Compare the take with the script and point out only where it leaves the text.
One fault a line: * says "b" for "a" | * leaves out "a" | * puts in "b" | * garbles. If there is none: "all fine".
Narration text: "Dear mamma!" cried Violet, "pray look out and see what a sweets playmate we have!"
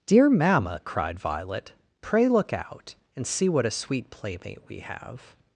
* says "sweet" for "sweets"